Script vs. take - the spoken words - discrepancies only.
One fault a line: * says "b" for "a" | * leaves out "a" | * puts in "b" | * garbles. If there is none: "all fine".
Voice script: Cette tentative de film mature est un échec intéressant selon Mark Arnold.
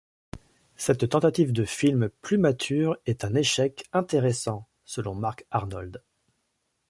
* puts in "plus"